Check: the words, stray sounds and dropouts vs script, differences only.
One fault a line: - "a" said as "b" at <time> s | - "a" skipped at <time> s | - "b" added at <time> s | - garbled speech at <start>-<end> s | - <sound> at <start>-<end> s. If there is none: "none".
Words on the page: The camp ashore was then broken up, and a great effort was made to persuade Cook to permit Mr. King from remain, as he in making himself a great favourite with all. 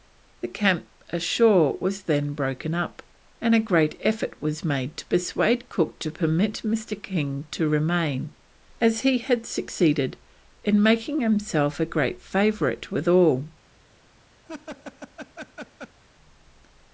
- "from" said as "to" at 7.5 s
- "had succeeded" added at 9.2 s
- laugh at 14.4-16.0 s